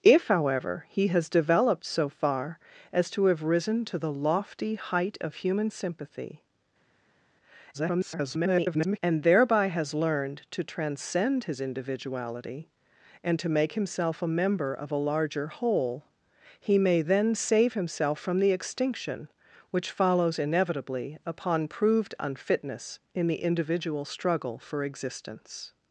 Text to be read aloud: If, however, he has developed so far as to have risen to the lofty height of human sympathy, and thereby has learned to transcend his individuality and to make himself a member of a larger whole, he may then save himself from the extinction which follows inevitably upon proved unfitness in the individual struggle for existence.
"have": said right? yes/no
yes